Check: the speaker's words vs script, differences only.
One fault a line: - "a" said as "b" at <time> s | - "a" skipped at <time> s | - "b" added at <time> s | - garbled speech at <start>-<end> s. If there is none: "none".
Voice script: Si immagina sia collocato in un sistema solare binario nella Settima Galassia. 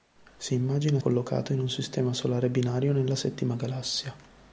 - "sia" skipped at 1.0 s